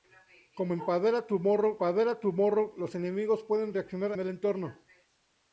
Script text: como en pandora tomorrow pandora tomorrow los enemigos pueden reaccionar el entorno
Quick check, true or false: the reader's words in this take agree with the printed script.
true